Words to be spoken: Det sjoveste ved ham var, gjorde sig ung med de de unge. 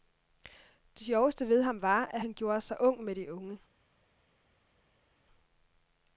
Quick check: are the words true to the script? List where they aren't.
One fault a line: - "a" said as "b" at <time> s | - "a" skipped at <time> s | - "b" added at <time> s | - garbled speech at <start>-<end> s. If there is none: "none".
- "at han" added at 2.0 s
- "de" skipped at 3.3 s